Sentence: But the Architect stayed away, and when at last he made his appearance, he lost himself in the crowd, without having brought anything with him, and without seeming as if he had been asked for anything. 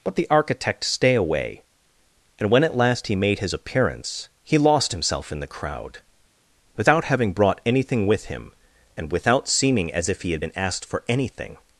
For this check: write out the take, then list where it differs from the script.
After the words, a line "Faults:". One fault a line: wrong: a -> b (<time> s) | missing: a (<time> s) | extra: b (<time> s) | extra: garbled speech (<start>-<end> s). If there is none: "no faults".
But the Architect stay away, and when at last he made his appearance, he lost himself in the crowd, without having brought anything with him, and without seeming as if he had been asked for anything.
Faults:
wrong: stayed -> stay (0.8 s)